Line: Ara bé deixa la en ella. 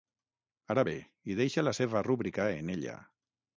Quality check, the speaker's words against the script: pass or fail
fail